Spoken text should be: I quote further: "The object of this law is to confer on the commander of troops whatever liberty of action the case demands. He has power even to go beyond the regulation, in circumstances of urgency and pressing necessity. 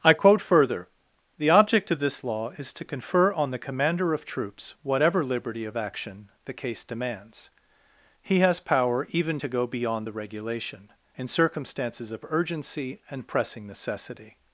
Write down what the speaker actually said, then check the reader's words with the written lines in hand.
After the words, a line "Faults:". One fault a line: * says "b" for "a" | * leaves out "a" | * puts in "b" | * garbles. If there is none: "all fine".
I quote further: "The object of this law is to confer on the commander of troops whatever liberty of action the case demands. He has power even to go beyond the regulation, in circumstances of urgency and pressing necessity.
Faults:
all fine